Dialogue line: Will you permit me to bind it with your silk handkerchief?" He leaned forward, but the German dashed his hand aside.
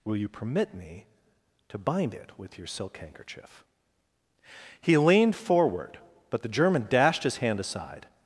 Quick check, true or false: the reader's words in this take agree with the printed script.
true